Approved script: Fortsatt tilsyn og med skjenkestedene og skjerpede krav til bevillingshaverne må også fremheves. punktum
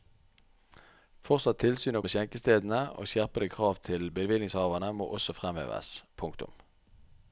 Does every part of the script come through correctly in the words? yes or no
yes